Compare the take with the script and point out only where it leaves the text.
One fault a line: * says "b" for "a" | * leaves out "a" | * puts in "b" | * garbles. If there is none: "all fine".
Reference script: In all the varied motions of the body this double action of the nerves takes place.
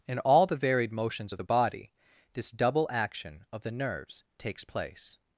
all fine